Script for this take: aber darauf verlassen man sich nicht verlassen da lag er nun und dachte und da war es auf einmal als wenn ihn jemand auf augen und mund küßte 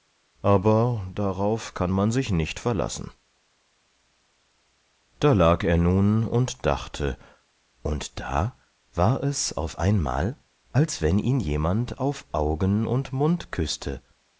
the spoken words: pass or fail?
fail